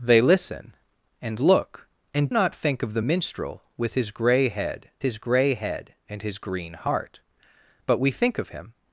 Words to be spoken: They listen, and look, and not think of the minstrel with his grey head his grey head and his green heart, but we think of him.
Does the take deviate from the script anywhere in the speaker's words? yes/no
no